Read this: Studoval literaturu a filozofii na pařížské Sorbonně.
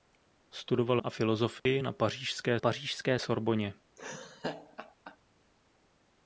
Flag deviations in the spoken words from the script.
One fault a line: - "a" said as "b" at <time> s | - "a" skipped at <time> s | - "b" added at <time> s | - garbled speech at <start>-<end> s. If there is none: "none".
- "literaturu" skipped at 1.0 s
- "pařížské" added at 2.6 s